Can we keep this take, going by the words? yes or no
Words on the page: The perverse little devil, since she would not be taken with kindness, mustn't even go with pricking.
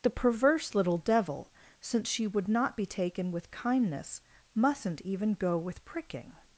yes